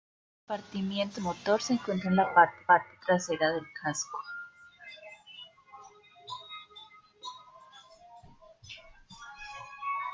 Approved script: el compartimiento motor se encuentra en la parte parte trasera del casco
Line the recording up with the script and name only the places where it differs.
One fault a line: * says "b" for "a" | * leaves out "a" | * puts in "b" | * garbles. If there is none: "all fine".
all fine